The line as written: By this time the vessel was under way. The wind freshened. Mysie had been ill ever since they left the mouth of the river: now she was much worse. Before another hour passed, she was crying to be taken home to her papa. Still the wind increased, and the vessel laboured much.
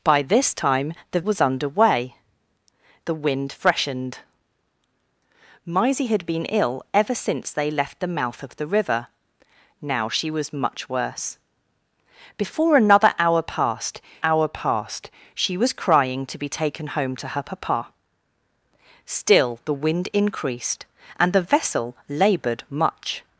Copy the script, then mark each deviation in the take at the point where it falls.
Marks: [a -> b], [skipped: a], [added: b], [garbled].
By this time the [skipped: vessel] was under way. The wind freshened. Mysie had been ill ever since they left the mouth of the river: now she was much worse. Before another hour passed, [added: hour passed] she was crying to be taken home to her papa. Still the wind increased, and the vessel laboured much.